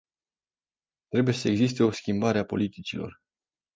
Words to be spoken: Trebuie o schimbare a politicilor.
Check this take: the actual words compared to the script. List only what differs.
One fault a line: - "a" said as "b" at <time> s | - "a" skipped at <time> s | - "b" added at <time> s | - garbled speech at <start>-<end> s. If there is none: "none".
- "să existe" added at 1.3 s